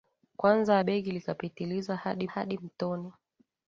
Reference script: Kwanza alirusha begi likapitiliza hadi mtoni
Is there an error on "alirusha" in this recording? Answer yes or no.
yes